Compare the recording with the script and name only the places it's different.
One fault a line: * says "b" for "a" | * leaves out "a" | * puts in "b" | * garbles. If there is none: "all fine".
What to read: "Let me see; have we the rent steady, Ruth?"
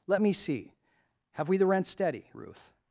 all fine